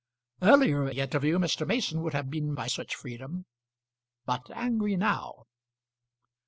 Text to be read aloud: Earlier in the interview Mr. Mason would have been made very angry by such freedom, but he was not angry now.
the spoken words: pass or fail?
fail